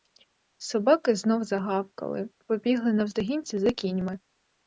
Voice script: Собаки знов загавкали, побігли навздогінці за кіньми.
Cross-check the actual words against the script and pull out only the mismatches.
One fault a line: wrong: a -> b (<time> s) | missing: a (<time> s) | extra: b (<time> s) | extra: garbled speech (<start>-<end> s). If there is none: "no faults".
no faults